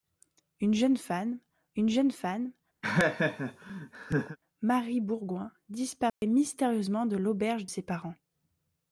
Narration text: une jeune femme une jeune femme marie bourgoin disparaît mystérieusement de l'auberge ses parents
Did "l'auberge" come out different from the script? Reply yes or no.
no